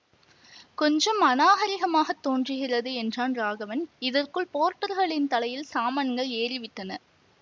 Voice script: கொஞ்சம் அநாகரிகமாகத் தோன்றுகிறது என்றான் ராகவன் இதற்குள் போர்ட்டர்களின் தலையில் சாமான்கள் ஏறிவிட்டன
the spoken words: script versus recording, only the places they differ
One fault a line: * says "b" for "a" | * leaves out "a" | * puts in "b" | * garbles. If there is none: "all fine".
all fine